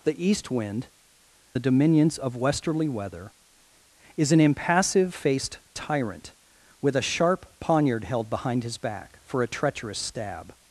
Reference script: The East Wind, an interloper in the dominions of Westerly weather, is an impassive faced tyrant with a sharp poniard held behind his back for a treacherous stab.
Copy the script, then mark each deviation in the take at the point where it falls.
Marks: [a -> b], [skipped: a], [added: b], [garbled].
The East Wind, [skipped: an interloper in] the dominions of Westerly weather, is an impassive faced tyrant with a sharp poniard held behind his back for a treacherous stab.